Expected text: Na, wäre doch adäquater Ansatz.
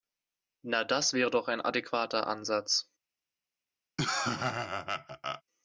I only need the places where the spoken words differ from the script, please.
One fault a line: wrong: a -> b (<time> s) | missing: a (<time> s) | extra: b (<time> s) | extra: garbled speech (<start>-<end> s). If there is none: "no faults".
extra: das (0.8 s)
extra: ein (1.5 s)